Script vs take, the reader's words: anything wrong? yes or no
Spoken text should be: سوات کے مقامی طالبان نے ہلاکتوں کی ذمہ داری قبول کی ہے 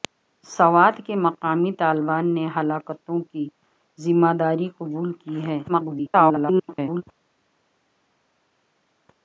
yes